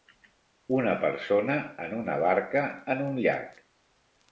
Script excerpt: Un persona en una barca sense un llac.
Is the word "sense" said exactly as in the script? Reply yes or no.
no